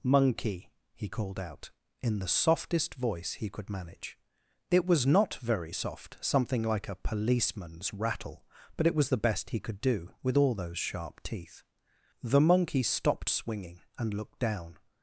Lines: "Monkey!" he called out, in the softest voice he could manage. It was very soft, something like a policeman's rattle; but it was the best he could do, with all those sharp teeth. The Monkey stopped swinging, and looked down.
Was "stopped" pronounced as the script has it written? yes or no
yes